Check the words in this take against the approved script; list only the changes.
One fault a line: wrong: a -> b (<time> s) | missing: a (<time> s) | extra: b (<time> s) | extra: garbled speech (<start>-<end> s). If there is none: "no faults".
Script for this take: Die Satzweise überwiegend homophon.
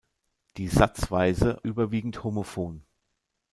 no faults